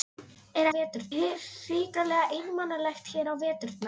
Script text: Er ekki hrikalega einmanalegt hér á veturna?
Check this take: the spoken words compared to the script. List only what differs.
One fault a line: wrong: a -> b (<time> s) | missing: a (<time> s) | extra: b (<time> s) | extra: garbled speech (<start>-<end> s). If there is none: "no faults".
wrong: ekki -> veturna (0.7 s)